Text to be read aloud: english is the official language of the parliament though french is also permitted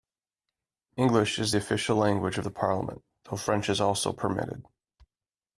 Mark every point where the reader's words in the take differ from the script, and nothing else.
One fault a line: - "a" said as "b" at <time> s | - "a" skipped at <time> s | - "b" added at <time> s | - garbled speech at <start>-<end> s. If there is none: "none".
none